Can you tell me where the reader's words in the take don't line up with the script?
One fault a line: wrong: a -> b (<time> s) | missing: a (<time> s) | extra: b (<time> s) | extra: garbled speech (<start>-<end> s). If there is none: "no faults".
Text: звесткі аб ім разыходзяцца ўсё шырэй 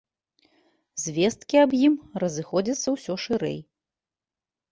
no faults